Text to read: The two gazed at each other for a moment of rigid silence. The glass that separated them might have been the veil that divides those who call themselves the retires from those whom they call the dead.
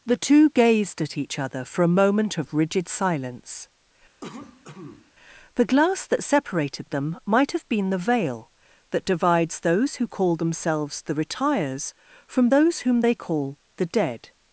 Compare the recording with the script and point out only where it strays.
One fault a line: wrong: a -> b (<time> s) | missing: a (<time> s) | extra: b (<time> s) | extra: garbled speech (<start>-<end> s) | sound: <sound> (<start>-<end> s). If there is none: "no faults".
sound: cough (4.2-5.1 s)